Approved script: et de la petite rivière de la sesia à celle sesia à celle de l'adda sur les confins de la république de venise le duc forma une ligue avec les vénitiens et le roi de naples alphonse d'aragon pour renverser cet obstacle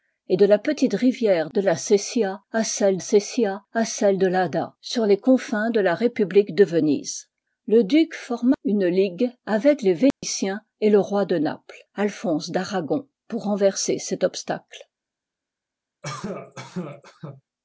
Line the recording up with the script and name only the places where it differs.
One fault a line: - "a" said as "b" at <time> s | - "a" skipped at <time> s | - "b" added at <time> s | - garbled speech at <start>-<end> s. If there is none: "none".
none